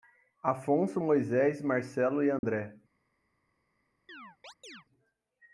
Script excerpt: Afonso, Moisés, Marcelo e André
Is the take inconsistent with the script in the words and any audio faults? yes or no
yes